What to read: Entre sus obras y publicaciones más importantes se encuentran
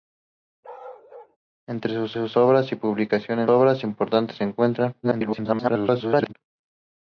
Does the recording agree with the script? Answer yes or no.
no